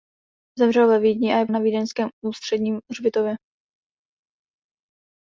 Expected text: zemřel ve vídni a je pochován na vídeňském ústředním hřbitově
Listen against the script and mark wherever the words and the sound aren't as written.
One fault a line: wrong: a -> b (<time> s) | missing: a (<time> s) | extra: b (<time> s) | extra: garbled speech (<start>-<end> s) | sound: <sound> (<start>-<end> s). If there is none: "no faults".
missing: pochován (1.4 s)